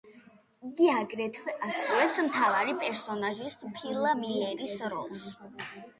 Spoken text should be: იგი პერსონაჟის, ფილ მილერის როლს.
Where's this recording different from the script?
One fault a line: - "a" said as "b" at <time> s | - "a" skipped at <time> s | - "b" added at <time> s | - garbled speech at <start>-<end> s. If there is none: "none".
- "აგრეთვე ასრულებს მთავარი" added at 0.9 s